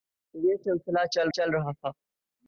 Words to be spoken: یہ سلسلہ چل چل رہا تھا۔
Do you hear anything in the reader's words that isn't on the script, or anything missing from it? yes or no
no